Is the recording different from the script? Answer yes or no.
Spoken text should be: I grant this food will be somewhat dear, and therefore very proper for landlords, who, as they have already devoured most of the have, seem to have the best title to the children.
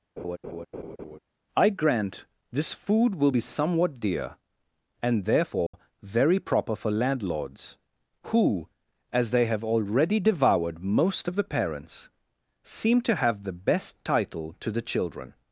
yes